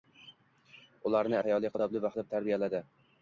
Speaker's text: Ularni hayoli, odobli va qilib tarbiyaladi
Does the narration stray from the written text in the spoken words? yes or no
no